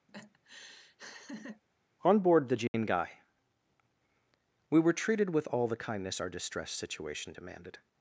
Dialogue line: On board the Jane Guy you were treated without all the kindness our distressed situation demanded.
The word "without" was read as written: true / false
false